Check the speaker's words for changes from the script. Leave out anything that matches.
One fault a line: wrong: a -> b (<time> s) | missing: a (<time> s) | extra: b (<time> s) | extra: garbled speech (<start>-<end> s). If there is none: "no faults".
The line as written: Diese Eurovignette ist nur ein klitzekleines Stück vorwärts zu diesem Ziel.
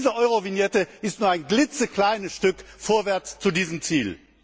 no faults